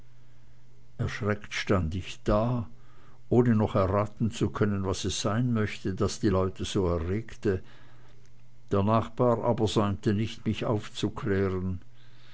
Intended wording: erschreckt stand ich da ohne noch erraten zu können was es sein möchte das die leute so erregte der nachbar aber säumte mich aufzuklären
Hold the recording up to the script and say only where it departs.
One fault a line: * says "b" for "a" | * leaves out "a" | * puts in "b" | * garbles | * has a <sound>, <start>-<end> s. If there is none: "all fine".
* puts in "nicht"